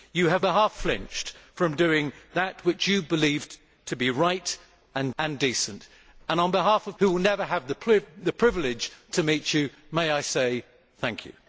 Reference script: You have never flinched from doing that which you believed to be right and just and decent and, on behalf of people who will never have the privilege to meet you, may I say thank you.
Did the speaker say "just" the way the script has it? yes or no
no